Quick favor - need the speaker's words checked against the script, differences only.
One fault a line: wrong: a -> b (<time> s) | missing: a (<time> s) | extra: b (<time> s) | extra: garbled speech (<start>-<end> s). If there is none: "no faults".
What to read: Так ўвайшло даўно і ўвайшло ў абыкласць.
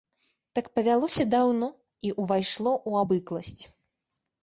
wrong: ўвайшло -> павялося (0.8 s)